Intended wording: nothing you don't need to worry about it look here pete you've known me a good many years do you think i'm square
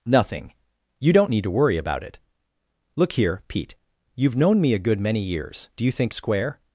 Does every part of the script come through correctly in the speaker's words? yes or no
no